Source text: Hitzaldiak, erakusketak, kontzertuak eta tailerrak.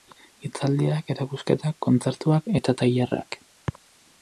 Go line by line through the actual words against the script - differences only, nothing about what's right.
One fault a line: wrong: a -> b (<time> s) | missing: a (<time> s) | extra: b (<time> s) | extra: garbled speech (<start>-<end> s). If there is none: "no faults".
no faults